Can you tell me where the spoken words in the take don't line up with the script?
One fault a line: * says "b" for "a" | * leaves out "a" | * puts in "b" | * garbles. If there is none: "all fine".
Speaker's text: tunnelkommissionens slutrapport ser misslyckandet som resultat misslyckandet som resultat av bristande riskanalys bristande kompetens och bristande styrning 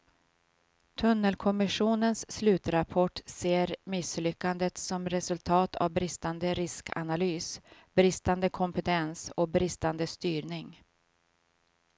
* leaves out "misslyckandet som resultat"